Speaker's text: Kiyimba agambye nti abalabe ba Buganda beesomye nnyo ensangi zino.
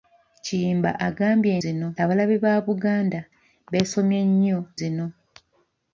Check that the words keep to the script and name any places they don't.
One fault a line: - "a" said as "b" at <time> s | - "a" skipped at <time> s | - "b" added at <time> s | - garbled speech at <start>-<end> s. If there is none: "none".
- "nti" said as "zino" at 1.6 s
- "ensangi" skipped at 4.6 s